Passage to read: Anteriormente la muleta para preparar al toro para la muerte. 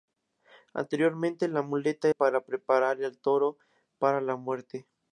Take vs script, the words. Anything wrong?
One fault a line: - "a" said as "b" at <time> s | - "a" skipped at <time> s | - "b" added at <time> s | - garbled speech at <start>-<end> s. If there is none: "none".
none